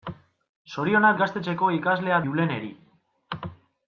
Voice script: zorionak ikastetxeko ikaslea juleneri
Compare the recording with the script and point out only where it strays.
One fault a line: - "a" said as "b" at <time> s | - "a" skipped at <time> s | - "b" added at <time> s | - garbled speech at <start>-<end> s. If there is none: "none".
none